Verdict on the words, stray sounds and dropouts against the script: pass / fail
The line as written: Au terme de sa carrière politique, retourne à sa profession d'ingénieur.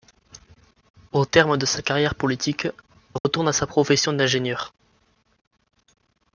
fail